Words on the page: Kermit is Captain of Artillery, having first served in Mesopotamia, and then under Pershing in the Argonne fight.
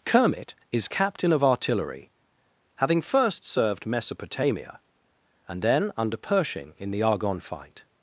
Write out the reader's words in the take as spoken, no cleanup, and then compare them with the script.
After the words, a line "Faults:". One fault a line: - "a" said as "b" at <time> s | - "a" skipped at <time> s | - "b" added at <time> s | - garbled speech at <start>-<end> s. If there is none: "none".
Kermit is Captain of Artillery, having first served Mesopotamia, and then under Pershing in the Argonne fight.
Faults:
- "in" skipped at 3.8 s